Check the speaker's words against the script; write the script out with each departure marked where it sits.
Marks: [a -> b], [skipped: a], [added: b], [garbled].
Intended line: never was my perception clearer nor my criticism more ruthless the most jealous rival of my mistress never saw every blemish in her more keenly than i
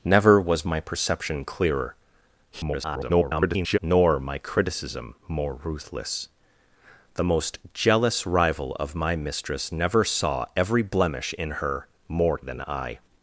never was my perception clearer [garbled] nor my criticism more ruthless the most jealous rival of my mistress never saw every blemish in her more [skipped: keenly] than i